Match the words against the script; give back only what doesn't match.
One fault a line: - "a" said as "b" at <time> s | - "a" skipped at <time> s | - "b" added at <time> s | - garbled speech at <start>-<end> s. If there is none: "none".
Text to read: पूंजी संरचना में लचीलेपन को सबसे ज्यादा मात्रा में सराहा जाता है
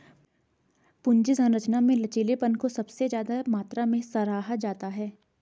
none